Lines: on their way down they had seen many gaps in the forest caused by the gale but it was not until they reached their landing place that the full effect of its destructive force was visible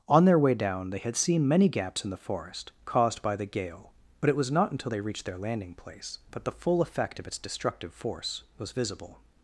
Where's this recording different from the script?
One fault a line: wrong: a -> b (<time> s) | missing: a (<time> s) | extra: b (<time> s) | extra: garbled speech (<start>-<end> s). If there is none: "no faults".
no faults